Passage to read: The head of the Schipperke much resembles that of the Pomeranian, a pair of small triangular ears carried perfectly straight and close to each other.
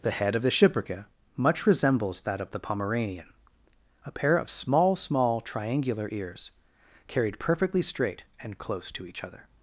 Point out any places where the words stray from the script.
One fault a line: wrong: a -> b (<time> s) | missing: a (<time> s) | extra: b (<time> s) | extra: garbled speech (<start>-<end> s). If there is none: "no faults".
extra: small (4.9 s)